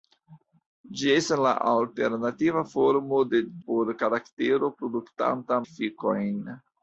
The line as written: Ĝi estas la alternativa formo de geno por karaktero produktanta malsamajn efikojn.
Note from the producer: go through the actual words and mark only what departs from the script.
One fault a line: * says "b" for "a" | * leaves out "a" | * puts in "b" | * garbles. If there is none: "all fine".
* leaves out "geno"
* leaves out "malsamajn"